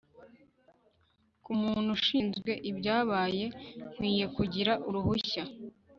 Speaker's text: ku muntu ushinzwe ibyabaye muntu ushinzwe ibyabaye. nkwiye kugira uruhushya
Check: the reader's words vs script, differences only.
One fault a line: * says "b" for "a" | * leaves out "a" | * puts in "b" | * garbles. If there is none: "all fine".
* leaves out "muntu ushinzwe ibyabaye"